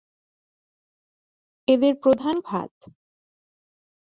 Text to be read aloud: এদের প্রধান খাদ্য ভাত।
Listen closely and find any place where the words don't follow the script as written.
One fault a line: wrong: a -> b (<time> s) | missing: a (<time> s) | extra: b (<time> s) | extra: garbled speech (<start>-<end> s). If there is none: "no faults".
missing: খাদ্য (2.4 s)